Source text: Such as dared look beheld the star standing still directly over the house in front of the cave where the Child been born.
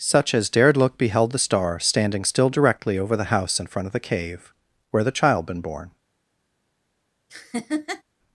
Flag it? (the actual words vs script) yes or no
no